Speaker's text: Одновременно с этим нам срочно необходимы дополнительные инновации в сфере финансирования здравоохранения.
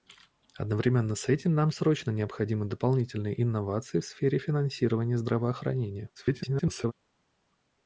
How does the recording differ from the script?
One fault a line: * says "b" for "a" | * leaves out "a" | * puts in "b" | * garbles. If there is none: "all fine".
* garbles